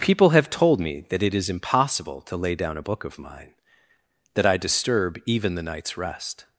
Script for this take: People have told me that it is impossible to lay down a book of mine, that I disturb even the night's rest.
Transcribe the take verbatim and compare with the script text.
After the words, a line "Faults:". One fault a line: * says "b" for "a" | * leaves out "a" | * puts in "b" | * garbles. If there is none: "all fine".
People have told me that it is impossible to lay down a book of mine, that I disturb even the night's rest.
Faults:
all fine